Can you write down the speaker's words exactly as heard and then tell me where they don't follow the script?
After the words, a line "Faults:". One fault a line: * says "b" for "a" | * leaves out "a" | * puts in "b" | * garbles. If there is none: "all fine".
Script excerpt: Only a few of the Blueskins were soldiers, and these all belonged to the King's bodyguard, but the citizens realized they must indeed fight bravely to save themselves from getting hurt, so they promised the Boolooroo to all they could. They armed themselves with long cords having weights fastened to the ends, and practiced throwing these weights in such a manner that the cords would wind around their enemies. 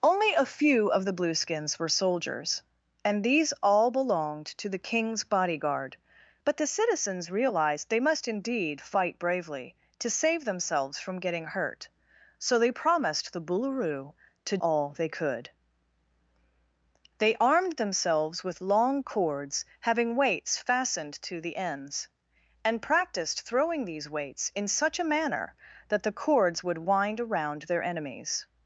Only a few of the Blueskins were soldiers, and these all belonged to the King's bodyguard, but the citizens realized they must indeed fight bravely to save themselves from getting hurt, so they promised the Boolooroo to all they could. They armed themselves with long cords having weights fastened to the ends, and practiced throwing these weights in such a manner that the cords would wind around their enemies.
Faults:
all fine